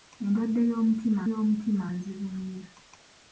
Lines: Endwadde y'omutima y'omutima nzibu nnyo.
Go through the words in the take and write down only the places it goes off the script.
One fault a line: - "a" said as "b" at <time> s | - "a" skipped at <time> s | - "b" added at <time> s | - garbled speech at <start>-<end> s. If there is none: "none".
none